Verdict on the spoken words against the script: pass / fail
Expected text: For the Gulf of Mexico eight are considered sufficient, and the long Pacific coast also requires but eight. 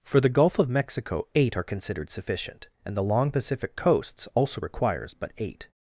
fail